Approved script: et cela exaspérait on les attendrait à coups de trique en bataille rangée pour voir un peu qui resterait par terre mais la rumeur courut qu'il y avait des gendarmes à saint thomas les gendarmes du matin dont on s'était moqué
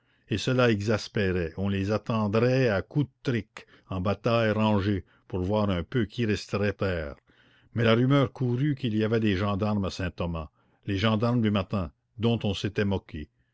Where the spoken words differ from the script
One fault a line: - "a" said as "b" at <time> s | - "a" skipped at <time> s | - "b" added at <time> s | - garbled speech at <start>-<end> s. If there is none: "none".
- "par" skipped at 6.7 s